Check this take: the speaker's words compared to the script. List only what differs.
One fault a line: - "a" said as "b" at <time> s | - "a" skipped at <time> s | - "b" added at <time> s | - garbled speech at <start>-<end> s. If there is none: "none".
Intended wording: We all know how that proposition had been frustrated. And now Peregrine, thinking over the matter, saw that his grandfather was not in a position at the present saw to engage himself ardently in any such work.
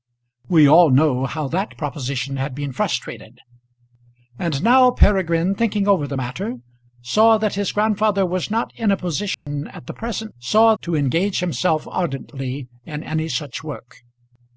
none